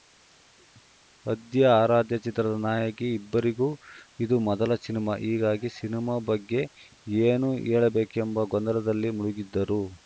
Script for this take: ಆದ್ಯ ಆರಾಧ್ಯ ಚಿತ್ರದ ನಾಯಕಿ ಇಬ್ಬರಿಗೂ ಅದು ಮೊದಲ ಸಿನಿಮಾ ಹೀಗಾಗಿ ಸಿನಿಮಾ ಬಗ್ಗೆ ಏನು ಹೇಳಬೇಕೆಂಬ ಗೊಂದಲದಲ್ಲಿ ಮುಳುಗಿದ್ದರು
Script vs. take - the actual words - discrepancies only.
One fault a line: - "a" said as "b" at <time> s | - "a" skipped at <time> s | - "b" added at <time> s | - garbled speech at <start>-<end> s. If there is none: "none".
- "ಅದು" said as "ಇದು" at 4.2 s